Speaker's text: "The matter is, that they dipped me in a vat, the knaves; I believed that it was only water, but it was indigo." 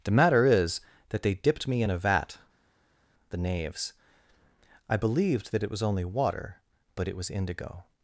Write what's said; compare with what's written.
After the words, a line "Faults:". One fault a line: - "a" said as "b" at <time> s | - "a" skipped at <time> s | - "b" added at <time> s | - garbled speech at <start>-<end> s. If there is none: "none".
"The matter is, that they dipped me in a vat, the knaves; I believed that it was only water, but it was indigo."
Faults:
none